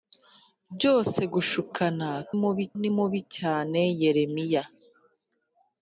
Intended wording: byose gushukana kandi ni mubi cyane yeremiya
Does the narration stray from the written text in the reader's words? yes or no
yes